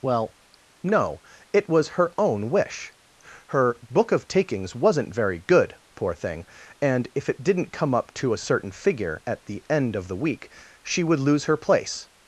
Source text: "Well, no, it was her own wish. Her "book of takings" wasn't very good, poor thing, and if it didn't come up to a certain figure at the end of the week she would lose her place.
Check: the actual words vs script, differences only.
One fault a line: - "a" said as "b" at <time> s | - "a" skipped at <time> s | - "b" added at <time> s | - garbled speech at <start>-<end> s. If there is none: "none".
none